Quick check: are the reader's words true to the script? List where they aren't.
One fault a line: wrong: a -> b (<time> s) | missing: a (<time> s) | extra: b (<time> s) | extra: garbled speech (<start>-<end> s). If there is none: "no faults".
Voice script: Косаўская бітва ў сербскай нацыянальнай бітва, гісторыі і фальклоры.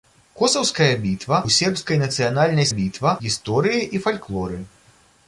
no faults